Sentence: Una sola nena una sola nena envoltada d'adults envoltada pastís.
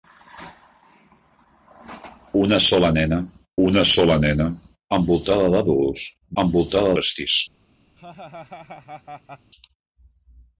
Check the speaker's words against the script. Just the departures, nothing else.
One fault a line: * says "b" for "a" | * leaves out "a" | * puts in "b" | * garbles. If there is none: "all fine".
all fine